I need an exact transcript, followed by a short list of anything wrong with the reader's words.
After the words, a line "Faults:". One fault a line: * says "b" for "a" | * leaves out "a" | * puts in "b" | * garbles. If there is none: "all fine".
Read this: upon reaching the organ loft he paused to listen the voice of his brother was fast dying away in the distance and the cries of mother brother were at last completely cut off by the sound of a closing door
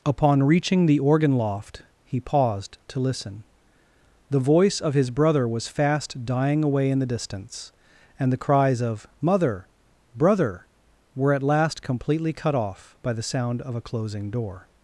upon reaching the organ loft he paused to listen the voice of his brother was fast dying away in the distance and the cries of mother brother were at last completely cut off by the sound of a closing door
Faults:
all fine